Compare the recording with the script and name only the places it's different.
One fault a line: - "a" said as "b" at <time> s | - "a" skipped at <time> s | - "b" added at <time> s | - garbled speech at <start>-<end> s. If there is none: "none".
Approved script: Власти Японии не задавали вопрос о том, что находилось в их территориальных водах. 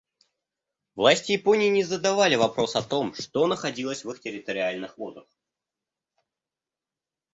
none